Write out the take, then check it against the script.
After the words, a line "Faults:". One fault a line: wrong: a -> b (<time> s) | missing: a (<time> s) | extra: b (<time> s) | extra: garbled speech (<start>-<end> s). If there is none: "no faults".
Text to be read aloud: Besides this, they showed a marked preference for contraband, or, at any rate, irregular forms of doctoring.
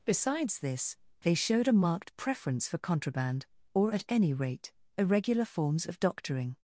Besides this, they showed a marked preference for contraband, or, at any rate, irregular forms of doctoring.
Faults:
no faults